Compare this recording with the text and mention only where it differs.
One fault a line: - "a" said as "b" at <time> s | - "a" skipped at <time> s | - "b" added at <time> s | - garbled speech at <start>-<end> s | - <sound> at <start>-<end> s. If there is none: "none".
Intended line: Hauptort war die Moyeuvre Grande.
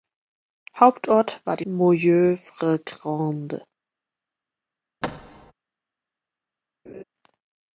- thud at 5.0-5.5 s
- laugh at 6.9-7.0 s